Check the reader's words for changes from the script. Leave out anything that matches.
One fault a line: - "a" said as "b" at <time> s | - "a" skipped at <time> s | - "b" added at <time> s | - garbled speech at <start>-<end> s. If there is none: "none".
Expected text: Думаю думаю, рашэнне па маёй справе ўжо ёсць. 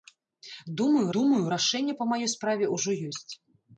none